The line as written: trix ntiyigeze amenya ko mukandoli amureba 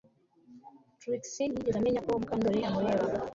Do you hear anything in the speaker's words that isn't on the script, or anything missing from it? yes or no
no